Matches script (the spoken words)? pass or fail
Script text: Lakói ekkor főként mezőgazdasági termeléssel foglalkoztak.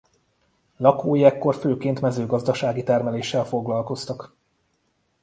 pass